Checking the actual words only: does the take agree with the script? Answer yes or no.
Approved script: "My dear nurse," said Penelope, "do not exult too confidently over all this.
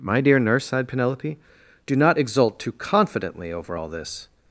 no